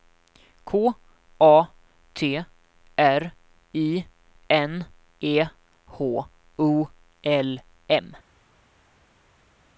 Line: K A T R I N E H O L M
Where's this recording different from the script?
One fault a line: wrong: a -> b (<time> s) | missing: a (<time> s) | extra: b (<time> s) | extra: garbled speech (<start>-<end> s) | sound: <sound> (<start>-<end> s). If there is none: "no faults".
no faults